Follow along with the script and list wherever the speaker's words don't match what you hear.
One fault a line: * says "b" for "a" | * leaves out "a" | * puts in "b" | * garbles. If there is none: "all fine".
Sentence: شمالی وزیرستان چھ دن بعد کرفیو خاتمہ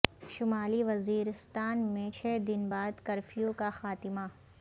* puts in "میں"
* puts in "کا"